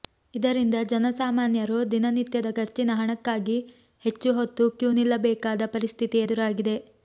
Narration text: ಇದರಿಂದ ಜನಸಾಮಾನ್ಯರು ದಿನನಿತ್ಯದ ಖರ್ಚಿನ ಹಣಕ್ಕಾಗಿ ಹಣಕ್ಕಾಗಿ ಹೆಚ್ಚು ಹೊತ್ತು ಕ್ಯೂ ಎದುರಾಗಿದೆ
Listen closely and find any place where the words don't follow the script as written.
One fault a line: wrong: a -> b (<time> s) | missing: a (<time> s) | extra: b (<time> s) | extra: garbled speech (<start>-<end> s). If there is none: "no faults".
missing: ಹಣಕ್ಕಾಗಿ (3.6 s)
extra: ನಿಲ್ಲಬೇಕಾದ ಪರಿಸ್ಥಿತಿ (5.0 s)